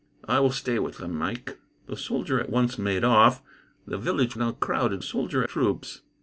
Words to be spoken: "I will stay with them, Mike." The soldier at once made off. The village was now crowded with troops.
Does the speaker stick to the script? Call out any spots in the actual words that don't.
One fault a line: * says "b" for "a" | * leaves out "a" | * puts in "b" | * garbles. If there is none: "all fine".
* leaves out "was"
* says "soldier" for "with"